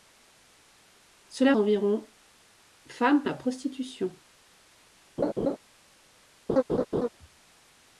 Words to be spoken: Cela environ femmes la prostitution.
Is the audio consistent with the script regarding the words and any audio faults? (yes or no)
no